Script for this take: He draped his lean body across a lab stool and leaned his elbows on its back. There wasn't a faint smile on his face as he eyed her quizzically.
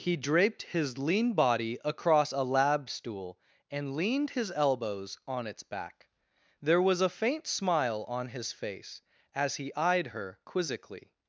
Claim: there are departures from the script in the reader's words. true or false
true